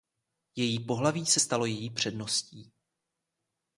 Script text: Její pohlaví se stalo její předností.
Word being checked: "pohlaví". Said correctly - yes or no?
yes